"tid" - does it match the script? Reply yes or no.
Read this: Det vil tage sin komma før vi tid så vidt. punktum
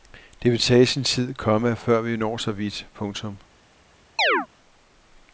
no